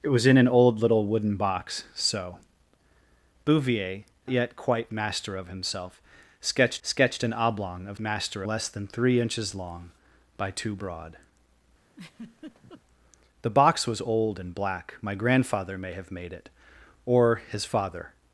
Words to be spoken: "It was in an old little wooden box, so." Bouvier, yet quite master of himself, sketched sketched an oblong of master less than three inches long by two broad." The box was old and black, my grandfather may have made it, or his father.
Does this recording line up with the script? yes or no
yes